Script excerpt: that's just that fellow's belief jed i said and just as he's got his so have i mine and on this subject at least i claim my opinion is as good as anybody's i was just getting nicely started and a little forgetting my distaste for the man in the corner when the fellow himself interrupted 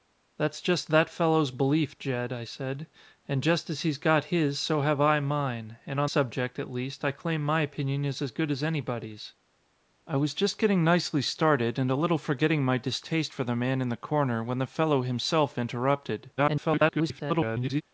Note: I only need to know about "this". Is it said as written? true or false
false